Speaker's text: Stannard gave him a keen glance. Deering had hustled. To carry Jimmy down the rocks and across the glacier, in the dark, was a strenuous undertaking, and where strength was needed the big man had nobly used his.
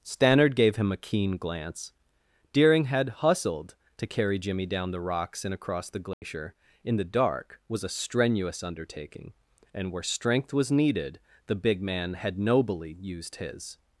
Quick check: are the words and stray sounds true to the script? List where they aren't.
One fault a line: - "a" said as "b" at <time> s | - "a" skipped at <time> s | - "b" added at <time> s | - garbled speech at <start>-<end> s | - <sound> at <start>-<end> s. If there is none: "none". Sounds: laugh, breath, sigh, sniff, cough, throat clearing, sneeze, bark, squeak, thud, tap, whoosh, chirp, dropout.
- dropout at 6.1-6.2 s